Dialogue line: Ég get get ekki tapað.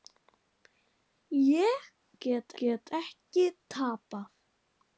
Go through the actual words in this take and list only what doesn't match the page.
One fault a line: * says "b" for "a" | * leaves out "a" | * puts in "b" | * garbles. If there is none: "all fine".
all fine